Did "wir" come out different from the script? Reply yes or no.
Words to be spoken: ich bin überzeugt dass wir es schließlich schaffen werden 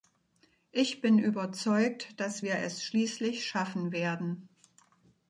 no